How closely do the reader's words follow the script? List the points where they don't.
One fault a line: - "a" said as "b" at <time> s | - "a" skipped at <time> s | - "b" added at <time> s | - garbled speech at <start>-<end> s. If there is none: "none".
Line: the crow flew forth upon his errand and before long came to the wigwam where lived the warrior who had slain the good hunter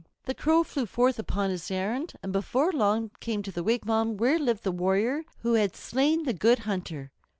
none